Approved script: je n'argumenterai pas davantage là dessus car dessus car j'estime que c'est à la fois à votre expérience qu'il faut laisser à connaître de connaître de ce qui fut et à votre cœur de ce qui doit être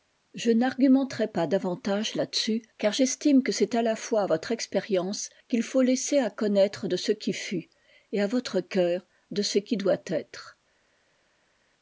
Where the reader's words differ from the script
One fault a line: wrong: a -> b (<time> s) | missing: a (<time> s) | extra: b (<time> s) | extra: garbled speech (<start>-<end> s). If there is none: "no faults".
missing: dessus car (2.9 s)
missing: connaître de (7.0 s)